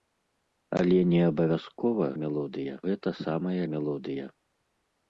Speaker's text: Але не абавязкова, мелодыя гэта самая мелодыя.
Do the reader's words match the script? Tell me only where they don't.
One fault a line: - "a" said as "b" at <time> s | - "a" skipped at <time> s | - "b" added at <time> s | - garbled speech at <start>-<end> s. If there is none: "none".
none